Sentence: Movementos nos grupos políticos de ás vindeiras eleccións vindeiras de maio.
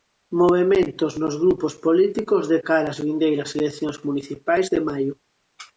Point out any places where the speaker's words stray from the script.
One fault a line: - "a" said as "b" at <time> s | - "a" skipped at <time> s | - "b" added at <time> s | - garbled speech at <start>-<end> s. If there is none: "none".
- "cara" added at 2.7 s
- "vindeiras" said as "municipais" at 4.1 s